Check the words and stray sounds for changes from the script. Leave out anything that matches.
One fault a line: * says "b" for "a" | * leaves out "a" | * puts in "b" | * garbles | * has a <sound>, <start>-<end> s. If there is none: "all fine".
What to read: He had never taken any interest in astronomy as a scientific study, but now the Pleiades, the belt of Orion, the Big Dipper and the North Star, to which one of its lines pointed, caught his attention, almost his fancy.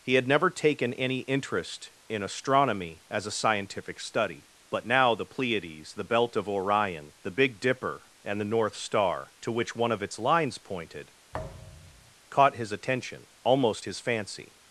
* has a thud, 11.3-12.1 s